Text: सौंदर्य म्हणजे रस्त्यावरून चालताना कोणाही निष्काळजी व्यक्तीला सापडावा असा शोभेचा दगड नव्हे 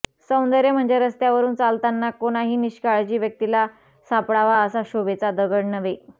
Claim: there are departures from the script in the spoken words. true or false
false